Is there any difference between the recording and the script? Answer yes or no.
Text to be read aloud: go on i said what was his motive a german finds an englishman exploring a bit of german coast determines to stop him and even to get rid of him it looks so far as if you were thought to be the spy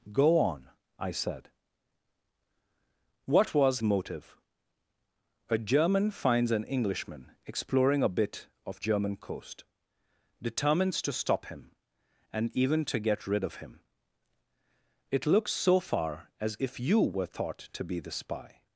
yes